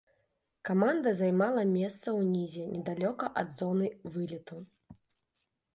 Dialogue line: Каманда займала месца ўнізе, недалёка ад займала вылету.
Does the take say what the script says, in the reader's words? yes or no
no